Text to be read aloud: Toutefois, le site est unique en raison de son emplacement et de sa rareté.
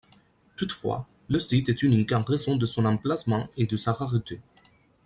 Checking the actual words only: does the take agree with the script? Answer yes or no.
yes